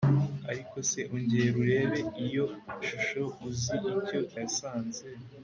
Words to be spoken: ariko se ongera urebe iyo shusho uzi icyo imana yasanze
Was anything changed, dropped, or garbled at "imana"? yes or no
yes